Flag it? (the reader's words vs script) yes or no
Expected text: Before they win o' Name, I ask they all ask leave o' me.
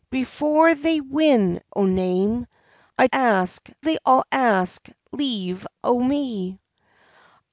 no